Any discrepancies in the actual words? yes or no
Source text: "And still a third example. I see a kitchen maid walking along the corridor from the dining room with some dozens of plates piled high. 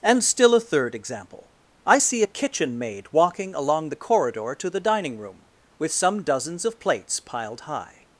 yes